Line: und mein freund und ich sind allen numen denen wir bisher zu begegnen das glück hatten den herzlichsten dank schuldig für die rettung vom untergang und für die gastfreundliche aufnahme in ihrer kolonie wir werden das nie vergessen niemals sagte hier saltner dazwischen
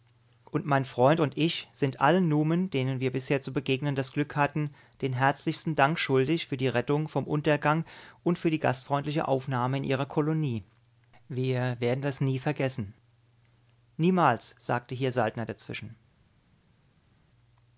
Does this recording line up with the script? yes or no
yes